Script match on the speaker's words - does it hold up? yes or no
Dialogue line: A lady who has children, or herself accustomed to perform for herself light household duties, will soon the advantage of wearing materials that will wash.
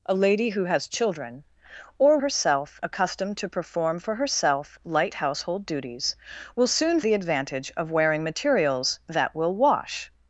yes